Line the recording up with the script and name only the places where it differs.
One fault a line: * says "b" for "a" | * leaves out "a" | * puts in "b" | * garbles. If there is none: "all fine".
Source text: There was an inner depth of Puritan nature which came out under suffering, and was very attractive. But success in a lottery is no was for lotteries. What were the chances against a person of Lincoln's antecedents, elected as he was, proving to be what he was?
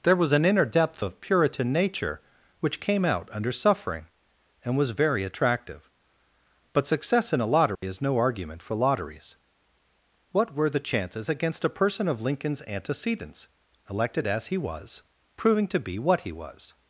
* says "argument" for "was"